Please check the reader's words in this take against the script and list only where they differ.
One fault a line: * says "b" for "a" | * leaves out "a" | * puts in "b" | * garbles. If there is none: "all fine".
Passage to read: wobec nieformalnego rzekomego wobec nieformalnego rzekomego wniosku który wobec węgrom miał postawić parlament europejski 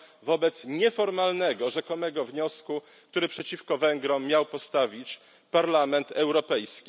* leaves out "wobec nieformalnego rzekomego"
* says "przeciwko" for "wobec"